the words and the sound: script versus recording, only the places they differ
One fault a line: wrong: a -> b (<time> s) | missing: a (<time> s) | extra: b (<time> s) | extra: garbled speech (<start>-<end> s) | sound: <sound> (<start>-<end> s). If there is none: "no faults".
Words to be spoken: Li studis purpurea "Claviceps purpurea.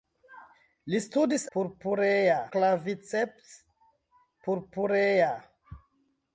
no faults